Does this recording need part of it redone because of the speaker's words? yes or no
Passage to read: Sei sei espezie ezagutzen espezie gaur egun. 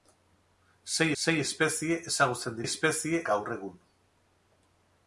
no